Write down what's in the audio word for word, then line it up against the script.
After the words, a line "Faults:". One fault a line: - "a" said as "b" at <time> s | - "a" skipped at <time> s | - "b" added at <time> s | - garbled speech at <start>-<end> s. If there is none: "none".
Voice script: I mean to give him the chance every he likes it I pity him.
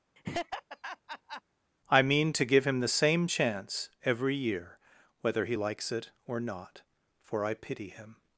I mean to give him the same chance every year, whether he likes it or not, for I pity him.
Faults:
- "same" added at 2.9 s
- "year whether" added at 4.3 s
- "or not for" added at 6.3 s